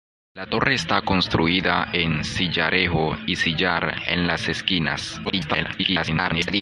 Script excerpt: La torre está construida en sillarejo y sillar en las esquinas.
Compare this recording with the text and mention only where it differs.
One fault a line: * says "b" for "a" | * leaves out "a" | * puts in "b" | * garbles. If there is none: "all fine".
* garbles